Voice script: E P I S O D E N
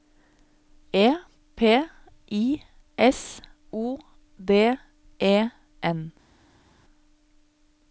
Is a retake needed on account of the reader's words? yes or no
no